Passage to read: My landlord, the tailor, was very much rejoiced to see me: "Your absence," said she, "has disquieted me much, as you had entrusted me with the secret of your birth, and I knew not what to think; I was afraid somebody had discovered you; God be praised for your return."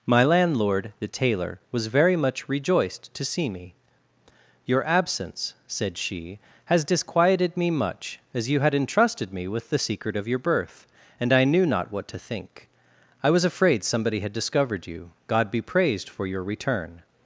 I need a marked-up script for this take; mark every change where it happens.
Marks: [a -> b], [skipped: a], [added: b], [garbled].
My landlord, the tailor, was very much rejoiced to see me: "Your absence," said she, "has disquieted me much, as you had entrusted me with the secret of your birth, and I knew not what to think; I was afraid somebody had discovered you; God be praised for your return."